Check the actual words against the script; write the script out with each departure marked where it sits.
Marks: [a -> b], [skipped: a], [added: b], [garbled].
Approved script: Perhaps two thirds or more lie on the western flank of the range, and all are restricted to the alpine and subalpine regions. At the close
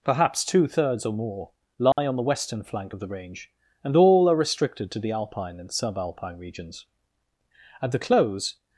Perhaps two thirds or more lie on the western flank of the range, and all are restricted to the alpine and subalpine regions. At the close